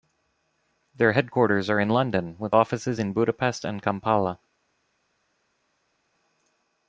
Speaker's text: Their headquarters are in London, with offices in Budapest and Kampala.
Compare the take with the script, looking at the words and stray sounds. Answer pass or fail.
pass